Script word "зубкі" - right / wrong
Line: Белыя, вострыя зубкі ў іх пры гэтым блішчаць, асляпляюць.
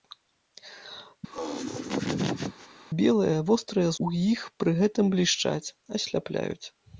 wrong